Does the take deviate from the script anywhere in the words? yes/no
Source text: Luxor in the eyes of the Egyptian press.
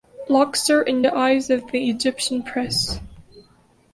no